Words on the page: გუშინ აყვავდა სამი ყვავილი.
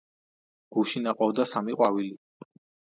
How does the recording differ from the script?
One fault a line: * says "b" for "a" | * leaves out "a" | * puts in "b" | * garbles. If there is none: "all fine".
all fine